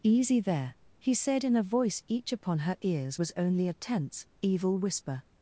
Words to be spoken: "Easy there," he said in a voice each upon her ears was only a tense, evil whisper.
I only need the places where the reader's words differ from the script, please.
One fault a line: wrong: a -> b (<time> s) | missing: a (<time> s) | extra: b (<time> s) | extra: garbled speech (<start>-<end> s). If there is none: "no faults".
no faults